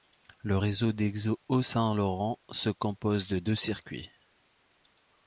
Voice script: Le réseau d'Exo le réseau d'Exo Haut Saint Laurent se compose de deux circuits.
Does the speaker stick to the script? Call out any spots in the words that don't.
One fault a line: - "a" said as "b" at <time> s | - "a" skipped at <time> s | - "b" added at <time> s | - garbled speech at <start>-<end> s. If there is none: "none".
- "le réseau d'Exo" skipped at 1.4 s